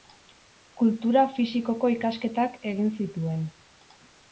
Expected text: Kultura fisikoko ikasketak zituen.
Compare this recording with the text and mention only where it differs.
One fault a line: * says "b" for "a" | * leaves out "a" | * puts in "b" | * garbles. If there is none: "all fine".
* puts in "egin"